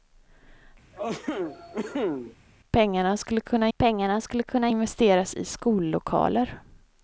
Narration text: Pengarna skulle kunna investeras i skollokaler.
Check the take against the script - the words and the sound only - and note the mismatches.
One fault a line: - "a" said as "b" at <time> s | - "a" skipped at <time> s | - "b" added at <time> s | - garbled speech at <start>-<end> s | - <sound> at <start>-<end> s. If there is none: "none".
- cough at 0.9-2.4 s
- "pengarna skulle kunna" added at 3.8 s